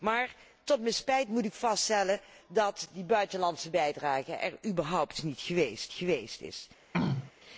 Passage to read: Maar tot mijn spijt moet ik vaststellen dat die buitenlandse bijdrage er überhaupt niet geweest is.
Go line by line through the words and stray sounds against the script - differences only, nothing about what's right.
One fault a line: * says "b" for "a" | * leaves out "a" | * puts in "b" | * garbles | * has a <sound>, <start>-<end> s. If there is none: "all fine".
* puts in "geweest"
* has a throat clearing, 6.9-7.3 s